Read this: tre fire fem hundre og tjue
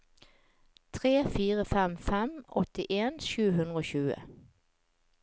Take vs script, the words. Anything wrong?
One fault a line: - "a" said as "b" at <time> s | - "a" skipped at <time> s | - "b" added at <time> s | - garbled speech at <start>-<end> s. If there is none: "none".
- "fem åttien sju" added at 2.1 s